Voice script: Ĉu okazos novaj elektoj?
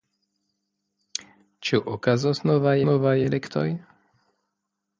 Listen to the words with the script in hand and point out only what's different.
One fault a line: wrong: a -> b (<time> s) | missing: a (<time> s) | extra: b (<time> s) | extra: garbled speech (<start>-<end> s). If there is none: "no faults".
extra: novaj (2.9 s)